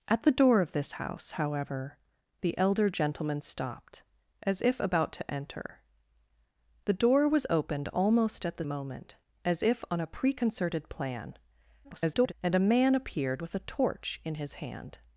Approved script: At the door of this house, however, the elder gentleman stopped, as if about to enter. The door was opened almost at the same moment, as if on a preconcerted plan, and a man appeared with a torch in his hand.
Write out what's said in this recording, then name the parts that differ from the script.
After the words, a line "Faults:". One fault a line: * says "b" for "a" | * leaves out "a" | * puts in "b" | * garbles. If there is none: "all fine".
At the door of this house, however, the elder gentleman stopped, as if about to enter. The door was opened almost at the moment, as if on a preconcerted plan, [garbled] and a man appeared with a torch in his hand.
Faults:
* leaves out "same"
* garbles